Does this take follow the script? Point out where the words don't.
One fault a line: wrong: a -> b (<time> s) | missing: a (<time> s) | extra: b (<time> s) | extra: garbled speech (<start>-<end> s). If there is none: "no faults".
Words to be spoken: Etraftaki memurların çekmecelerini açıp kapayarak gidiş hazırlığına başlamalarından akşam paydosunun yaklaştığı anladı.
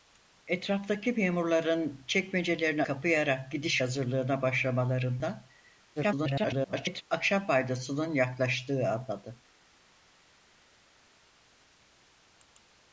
missing: açıp (2.8 s)
extra: garbled speech (6.0-7.0 s)